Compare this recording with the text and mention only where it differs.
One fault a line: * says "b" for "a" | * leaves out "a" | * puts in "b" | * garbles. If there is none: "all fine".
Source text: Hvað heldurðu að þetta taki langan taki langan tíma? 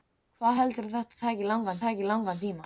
all fine